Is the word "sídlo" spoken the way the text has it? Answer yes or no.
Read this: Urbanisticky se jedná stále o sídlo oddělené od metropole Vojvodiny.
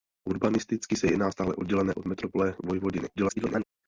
no